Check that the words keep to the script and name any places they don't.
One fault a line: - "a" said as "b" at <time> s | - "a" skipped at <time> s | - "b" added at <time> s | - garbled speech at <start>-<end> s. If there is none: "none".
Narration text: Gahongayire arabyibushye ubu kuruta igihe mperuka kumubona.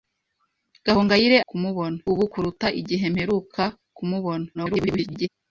- "arabyibushye" said as "kumubona" at 1.5 s
- garbled speech at 4.5-5.3 s